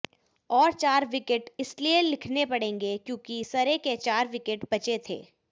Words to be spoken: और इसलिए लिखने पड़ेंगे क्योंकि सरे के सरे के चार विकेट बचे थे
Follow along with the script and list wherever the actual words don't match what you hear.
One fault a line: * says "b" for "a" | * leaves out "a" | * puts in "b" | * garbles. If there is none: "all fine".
* puts in "चार विकेट"
* leaves out "सरे के"